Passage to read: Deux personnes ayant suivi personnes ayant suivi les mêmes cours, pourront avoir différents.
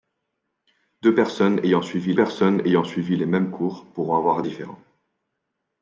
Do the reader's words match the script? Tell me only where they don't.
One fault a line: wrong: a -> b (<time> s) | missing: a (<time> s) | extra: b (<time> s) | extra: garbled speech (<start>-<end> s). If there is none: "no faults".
no faults